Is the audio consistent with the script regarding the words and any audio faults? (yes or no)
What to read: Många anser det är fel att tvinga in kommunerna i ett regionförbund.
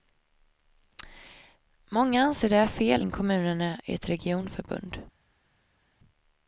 no